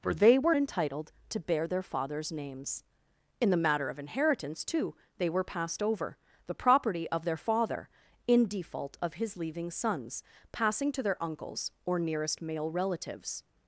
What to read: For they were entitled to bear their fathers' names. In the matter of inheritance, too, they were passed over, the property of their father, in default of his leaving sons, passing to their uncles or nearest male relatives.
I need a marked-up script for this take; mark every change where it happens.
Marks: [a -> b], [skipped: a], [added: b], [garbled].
For they were entitled to bear their fathers' names. In the matter of inheritance, too, they were passed over, the property of their father, in default of his leaving sons, passing to their uncles or nearest male relatives.